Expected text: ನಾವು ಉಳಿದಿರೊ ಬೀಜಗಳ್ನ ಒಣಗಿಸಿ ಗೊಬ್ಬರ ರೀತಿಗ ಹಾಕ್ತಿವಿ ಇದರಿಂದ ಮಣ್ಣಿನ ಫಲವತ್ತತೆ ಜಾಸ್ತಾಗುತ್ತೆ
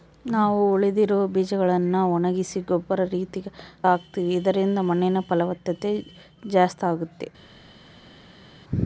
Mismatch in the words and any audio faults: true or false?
false